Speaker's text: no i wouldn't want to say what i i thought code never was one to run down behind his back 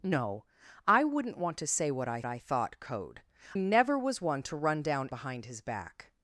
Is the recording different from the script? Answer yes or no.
no